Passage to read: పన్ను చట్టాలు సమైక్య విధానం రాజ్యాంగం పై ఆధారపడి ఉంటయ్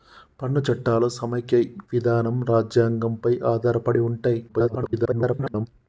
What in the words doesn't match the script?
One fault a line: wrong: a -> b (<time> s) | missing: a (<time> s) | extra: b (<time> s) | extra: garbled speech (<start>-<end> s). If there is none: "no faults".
extra: garbled speech (4.5-5.7 s)